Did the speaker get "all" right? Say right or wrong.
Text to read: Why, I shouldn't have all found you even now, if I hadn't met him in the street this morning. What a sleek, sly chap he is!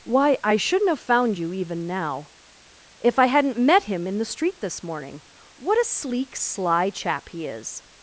wrong